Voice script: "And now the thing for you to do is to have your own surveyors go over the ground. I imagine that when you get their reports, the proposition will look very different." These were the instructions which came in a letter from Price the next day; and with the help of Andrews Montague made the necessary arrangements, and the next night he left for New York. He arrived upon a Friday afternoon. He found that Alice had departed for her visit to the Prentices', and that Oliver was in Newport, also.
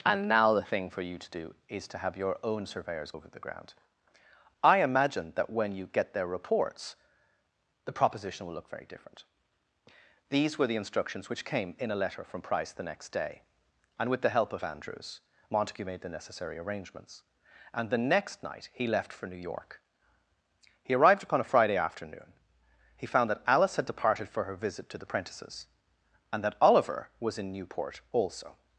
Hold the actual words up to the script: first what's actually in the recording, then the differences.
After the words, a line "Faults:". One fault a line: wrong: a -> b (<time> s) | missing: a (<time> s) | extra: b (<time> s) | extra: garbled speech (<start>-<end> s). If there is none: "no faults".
"And now the thing for you to do is to have your own surveyors over the ground. I imagine that when you get their reports, the proposition will look very different." These were the instructions which came in a letter from Price the next day; and with the help of Andrews Montague made the necessary arrangements, and the next night he left for New York. He arrived upon a Friday afternoon. He found that Alice had departed for her visit to the Prentices', and that Oliver was in Newport, also.
Faults:
missing: go (3.1 s)